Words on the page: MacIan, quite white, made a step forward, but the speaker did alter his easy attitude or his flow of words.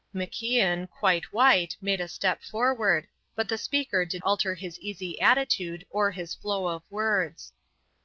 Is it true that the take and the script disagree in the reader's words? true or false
false